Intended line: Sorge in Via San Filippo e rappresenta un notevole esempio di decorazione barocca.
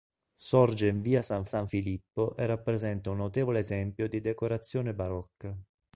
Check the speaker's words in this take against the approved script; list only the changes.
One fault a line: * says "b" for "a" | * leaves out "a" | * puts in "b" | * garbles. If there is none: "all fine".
* puts in "San"